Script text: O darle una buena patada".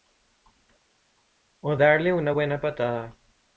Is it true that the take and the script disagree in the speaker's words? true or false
false